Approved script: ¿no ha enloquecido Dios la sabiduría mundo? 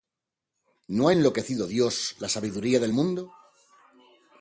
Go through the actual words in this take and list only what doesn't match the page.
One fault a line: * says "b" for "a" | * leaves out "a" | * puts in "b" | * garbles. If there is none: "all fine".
* puts in "del"